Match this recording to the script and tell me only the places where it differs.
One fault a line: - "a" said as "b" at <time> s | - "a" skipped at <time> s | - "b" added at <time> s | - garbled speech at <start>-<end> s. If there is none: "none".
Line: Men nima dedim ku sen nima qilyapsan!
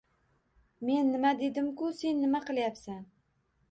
none